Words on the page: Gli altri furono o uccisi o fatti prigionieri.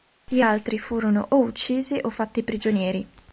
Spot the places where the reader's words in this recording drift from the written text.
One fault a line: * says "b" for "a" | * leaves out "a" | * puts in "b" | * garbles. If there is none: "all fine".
all fine